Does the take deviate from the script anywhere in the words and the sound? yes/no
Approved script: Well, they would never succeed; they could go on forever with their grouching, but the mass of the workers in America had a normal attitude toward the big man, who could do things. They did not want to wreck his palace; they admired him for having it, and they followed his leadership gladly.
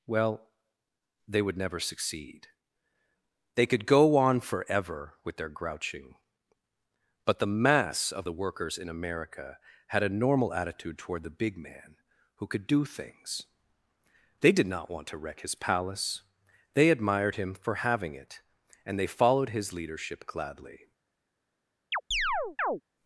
yes